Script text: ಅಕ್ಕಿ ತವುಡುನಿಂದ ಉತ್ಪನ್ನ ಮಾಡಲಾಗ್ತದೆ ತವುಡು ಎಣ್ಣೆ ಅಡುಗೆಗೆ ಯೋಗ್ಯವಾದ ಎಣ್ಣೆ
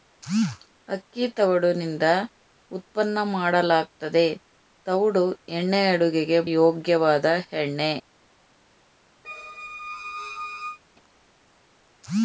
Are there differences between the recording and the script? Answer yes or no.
no